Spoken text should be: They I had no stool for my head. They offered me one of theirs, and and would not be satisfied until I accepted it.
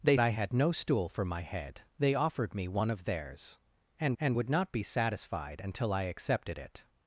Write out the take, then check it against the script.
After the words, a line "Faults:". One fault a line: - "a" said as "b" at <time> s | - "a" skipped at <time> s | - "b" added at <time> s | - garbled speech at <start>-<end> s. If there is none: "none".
They I had no stool for my head. They offered me one of theirs, and and would not be satisfied until I accepted it.
Faults:
none